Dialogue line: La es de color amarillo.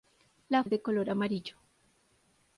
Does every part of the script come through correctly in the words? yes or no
yes